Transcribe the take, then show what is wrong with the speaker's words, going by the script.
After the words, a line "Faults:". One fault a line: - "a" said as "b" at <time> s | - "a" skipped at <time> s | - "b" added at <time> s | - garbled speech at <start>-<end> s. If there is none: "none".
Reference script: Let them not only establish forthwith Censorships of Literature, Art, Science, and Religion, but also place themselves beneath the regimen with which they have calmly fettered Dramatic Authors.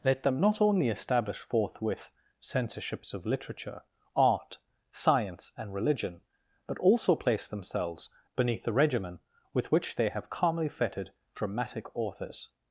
Let them not only establish forthwith Censorships of Literature, Art, Science, and Religion, but also place themselves beneath the regimen with which they have calmly fettered Dramatic Authors.
Faults:
none